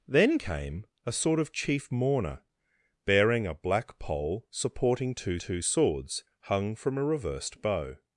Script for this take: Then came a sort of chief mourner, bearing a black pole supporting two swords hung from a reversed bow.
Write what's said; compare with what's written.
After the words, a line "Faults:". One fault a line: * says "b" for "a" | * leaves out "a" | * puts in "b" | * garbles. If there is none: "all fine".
Then came a sort of chief mourner, bearing a black pole supporting two two swords hung from a reversed bow.
Faults:
* puts in "two"